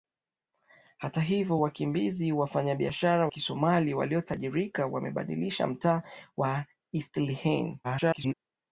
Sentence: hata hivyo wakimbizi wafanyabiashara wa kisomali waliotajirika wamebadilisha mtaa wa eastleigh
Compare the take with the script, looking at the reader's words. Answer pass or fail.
fail